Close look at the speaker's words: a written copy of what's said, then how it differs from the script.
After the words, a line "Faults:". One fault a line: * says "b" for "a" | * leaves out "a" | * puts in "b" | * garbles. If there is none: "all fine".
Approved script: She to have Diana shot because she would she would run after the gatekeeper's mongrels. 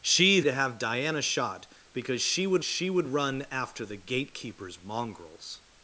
She to have Diana shot because she would she would run after the gatekeeper's mongrels.
Faults:
all fine